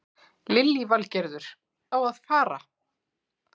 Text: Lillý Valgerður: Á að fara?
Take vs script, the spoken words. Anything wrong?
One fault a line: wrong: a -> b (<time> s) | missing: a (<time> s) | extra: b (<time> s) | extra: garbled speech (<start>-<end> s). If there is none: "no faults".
no faults